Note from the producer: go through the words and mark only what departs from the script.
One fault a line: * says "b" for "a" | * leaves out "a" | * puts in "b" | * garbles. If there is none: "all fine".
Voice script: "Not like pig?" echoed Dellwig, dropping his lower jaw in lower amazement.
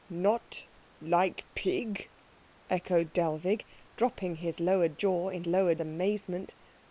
all fine